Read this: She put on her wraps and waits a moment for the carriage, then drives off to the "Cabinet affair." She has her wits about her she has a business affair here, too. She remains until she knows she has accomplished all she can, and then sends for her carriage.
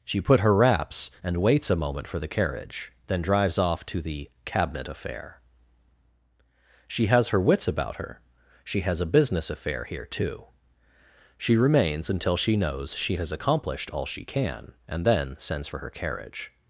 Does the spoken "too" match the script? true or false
true